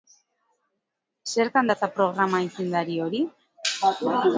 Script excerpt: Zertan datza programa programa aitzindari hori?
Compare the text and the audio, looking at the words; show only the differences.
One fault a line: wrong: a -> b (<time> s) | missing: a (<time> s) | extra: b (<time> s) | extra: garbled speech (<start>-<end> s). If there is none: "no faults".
missing: programa (2.4 s)